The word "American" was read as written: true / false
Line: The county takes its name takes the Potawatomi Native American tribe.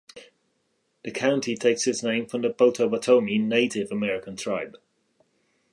true